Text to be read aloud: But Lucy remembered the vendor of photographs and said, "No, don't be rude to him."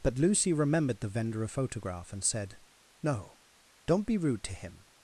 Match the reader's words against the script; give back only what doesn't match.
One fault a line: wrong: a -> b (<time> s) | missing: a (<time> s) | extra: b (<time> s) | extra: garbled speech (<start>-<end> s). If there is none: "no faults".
wrong: photographs -> photograph (1.5 s)